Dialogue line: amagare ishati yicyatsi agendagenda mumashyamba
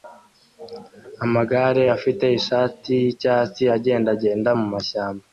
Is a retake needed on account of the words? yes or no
yes